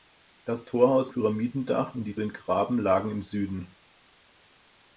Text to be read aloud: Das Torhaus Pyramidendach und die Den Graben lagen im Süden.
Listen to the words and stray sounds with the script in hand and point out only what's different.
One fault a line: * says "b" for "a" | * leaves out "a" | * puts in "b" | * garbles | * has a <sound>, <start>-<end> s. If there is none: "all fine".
all fine